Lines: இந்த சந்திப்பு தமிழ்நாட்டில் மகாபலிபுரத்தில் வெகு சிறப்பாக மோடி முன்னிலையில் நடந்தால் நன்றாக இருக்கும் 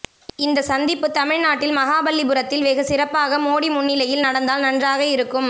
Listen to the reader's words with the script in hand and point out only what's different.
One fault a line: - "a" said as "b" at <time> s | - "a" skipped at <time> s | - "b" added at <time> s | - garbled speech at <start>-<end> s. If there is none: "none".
none